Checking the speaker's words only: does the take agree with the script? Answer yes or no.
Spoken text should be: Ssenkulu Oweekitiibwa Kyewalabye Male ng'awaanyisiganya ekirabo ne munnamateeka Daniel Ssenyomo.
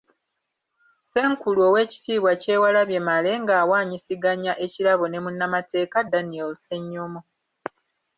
yes